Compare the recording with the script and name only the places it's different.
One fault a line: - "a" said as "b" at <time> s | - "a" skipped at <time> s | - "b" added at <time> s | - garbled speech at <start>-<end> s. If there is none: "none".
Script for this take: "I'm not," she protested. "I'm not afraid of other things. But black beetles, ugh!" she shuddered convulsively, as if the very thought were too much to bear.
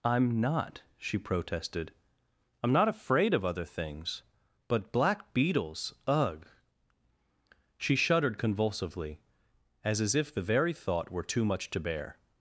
- "as" added at 10.0 s